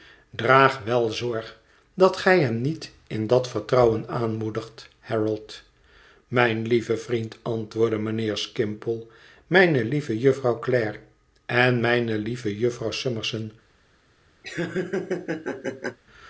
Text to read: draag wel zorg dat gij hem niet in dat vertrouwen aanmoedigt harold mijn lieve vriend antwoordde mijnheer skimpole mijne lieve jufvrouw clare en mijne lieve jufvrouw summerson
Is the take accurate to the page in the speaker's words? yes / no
yes